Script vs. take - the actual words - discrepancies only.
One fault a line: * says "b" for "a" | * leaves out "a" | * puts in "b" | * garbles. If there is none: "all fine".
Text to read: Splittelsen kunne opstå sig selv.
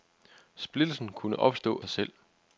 all fine